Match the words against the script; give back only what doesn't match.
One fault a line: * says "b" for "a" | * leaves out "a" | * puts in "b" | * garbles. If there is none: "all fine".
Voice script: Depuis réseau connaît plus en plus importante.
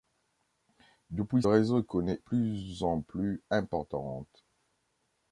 all fine